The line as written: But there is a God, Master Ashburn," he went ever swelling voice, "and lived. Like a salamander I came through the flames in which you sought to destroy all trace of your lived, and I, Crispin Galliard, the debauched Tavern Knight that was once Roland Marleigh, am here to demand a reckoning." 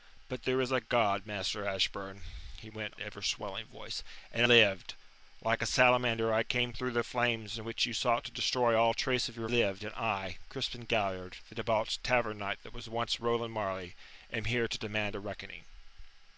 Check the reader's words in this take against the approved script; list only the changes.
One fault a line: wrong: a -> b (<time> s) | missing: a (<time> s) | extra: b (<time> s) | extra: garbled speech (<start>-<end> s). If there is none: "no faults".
no faults